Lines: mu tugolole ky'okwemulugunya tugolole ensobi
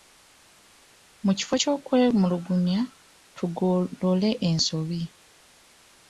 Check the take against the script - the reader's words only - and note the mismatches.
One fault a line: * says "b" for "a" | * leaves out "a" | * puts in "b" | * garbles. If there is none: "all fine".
* says "kifo" for "tugolole"